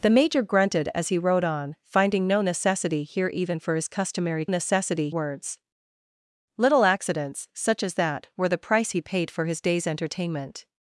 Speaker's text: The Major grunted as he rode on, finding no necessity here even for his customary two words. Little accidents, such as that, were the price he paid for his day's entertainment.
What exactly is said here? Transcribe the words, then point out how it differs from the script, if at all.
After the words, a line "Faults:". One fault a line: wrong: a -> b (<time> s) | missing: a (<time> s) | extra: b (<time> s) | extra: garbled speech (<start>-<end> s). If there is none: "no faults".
The Major grunted as he rode on, finding no necessity here even for his customary necessity words. Little accidents, such as that, were the price he paid for his day's entertainment.
Faults:
wrong: two -> necessity (4.5 s)